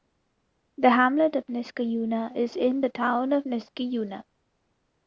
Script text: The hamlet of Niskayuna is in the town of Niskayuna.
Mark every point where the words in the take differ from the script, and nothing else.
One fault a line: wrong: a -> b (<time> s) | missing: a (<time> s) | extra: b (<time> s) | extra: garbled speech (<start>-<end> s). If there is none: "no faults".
no faults